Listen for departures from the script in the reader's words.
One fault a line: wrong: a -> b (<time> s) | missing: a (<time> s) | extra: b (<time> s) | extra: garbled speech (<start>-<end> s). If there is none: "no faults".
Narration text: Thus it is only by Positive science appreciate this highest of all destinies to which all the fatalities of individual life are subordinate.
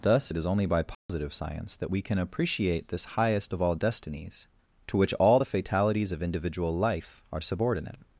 extra: that we can (1.8 s)